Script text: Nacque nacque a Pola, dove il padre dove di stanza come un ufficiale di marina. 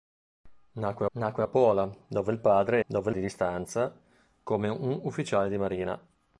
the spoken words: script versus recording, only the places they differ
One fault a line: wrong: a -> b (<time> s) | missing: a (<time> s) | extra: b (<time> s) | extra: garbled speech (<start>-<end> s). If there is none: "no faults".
no faults